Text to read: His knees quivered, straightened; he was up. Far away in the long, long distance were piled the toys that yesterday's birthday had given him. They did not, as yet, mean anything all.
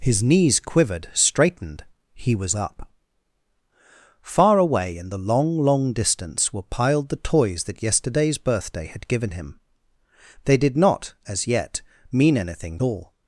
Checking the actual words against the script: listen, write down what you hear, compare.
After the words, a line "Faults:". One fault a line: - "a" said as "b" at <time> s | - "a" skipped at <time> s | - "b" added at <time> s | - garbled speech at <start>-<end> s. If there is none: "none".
His knees quivered, straightened; he was up. Far away in the long, long distance were piled the toys that yesterday's birthday had given him. They did not, as yet, mean anything all.
Faults:
none